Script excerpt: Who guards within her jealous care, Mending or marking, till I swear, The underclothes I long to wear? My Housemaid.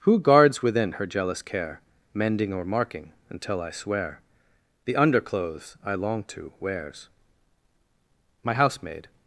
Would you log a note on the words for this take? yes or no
yes